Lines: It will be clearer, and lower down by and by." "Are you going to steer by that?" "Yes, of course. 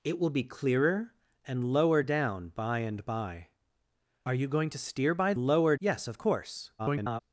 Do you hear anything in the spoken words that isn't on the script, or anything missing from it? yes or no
yes